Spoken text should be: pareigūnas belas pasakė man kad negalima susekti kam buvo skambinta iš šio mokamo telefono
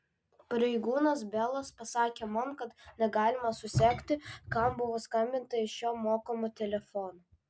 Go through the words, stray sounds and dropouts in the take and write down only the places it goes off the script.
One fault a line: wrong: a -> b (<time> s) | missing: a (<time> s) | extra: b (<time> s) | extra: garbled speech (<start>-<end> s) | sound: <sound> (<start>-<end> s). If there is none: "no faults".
no faults